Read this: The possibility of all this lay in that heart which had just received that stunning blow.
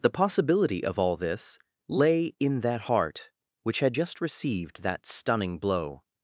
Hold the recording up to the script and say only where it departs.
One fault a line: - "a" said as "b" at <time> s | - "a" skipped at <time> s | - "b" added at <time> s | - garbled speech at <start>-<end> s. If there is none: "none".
none